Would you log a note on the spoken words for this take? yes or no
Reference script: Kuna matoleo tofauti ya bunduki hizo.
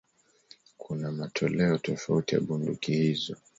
no